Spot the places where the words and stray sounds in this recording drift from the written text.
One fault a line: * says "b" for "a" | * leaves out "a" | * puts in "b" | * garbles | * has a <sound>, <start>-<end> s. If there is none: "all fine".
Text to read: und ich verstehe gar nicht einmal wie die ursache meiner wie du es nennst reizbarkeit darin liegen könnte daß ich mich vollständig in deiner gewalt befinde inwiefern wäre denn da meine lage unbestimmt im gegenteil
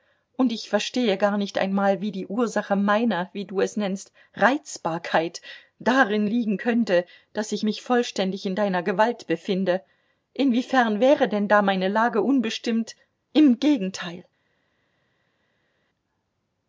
all fine